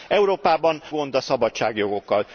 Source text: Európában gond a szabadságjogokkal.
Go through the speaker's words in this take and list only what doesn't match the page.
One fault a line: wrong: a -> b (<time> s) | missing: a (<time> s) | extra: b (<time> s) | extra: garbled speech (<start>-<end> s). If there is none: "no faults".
no faults